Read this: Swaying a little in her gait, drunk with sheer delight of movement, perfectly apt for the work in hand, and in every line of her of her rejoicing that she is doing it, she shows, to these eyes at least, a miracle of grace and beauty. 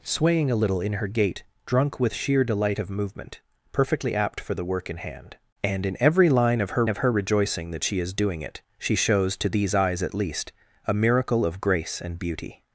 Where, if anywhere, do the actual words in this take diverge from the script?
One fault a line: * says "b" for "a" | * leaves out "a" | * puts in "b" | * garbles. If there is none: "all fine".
all fine